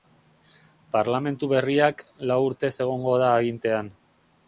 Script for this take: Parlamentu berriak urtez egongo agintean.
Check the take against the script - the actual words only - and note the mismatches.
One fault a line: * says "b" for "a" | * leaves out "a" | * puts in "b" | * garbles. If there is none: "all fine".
* puts in "lau"
* puts in "da"